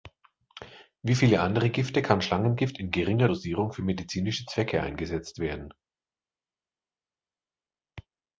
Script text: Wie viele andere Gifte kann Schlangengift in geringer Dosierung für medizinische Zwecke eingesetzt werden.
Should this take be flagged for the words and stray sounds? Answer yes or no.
no